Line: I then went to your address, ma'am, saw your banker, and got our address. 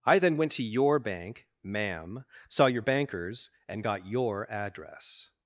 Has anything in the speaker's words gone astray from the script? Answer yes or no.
yes